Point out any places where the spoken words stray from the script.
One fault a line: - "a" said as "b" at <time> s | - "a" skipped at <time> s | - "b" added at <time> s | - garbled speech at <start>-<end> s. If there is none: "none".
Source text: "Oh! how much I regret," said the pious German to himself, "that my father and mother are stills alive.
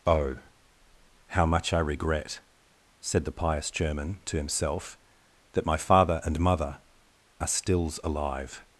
none